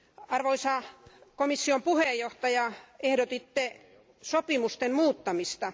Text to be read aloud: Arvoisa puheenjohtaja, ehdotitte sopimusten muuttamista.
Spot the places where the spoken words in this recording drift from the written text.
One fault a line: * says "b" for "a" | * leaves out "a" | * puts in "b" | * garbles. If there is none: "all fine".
* puts in "komission"